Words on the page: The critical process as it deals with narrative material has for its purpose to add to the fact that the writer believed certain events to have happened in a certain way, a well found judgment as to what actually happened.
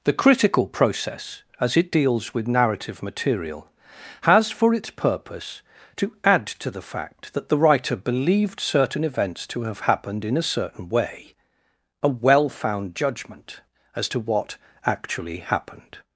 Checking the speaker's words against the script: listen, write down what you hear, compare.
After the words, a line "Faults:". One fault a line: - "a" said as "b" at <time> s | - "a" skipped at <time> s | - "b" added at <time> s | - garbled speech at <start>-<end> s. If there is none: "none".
The critical process as it deals with narrative material has for its purpose to add to the fact that the writer believed certain events to have happened in a certain way, a well found judgment as to what actually happened.
Faults:
none